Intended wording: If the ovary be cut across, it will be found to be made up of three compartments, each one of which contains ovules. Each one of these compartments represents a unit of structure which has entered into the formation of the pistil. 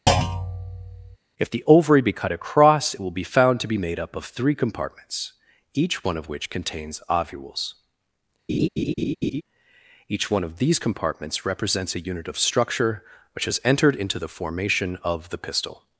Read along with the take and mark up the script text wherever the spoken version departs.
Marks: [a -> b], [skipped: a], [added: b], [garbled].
If the ovary be cut across, it will be found to be made up of three compartments, each one of which contains ovules. Each one of these compartments represents a unit of structure which has entered into the formation of the pistil.